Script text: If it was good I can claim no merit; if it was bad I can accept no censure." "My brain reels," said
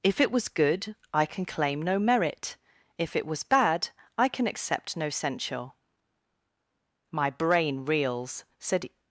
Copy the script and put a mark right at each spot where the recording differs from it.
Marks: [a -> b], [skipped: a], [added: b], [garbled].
If it was good I can claim no merit; if it was bad I can accept no censure." "My brain reels," said